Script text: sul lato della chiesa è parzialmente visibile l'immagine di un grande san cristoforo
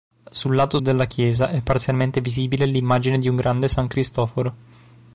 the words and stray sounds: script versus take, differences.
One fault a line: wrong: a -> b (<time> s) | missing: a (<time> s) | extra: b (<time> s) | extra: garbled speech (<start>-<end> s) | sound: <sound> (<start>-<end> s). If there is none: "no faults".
no faults